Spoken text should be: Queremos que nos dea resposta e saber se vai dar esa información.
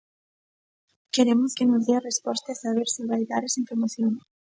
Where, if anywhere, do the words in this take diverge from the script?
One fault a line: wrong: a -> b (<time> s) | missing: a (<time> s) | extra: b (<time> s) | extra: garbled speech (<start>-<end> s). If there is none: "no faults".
no faults